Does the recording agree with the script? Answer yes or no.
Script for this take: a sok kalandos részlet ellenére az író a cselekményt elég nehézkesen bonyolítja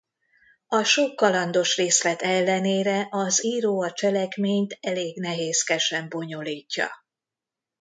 yes